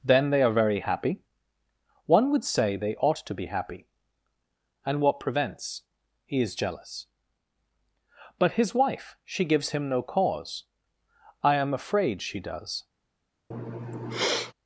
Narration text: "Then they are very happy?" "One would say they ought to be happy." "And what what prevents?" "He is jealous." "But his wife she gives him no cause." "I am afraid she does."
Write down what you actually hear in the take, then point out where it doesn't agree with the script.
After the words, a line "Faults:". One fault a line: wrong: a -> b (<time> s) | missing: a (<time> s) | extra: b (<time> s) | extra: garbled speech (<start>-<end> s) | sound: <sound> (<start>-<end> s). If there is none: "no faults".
"Then they are very happy?" "One would say they ought to be happy." "And what prevents?" "He is jealous." "But his wife she gives him no cause." "I am afraid she does."
Faults:
missing: what (5.2 s)
sound: sniff (13.5-14.5 s)